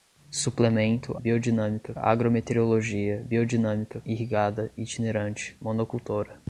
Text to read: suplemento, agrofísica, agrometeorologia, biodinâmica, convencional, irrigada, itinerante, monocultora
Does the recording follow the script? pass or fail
fail